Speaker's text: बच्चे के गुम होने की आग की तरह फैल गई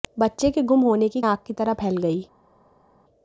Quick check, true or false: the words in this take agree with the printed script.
true